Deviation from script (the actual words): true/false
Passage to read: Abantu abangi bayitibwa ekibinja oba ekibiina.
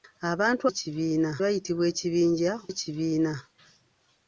true